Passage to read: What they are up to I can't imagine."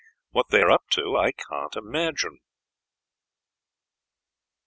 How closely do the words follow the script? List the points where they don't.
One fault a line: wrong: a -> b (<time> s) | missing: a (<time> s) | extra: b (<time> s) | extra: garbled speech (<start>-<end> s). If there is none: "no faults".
no faults